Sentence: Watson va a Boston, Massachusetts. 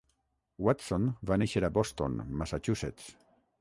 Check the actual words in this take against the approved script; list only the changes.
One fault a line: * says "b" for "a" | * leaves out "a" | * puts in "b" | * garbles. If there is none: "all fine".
* puts in "néixer"